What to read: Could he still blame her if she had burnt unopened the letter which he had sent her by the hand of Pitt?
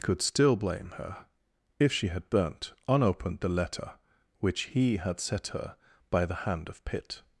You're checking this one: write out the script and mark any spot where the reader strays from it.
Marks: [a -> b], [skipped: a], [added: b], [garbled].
Could [skipped: he] still blame her if she had burnt unopened the letter which he had [sent -> set] her by the hand of Pitt?